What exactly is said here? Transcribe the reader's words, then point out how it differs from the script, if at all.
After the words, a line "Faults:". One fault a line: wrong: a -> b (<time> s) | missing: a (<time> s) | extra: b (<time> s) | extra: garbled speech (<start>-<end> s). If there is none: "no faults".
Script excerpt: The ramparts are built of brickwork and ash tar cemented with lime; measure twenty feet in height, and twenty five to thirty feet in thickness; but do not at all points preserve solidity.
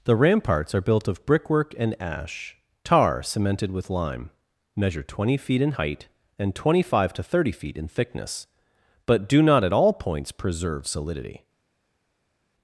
The ramparts are built of brickwork and ash tar cemented with lime; measure twenty feet in height, and twenty five to thirty feet in thickness; but do not at all points preserve solidity.
Faults:
no faults